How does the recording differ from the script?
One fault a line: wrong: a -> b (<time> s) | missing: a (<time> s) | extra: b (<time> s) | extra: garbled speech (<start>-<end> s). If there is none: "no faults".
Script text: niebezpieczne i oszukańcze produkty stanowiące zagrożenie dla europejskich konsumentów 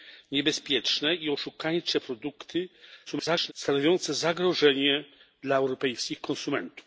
extra: garbled speech (3.1-3.5 s)